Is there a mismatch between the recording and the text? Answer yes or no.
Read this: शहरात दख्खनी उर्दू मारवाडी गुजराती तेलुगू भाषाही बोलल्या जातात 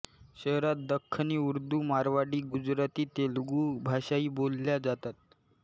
no